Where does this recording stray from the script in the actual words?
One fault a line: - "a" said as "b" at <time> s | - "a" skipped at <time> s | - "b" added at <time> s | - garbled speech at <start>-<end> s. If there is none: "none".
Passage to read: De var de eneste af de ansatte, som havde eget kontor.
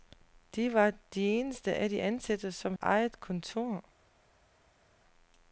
- "havde" skipped at 2.7 s